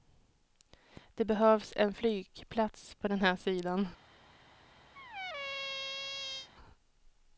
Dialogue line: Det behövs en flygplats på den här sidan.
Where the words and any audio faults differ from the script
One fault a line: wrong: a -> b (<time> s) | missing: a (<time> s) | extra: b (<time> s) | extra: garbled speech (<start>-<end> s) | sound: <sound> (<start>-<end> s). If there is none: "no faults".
sound: squeak (4.9-6.5 s)